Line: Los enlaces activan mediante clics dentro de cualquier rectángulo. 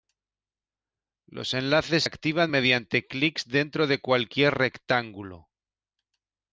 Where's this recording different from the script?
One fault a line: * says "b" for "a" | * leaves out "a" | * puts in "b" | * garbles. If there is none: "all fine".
all fine